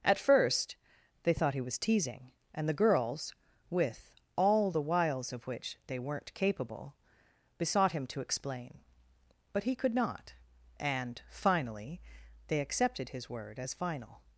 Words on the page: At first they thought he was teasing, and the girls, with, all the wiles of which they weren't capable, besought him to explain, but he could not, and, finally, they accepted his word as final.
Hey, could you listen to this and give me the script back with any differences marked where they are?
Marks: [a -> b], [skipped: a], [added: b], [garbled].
At first they thought he was teasing, and the girls, with, all the wiles of which they weren't capable, besought him to explain, but he could not, and, finally, they accepted his word as final.